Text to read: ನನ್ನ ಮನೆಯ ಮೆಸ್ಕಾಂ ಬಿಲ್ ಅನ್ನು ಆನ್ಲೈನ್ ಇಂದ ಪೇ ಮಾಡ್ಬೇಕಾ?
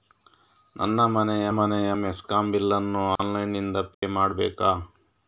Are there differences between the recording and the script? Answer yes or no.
yes